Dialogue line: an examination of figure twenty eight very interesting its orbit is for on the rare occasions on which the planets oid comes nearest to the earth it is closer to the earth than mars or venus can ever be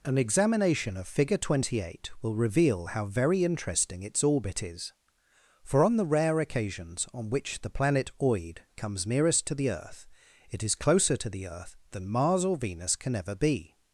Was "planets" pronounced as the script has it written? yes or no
no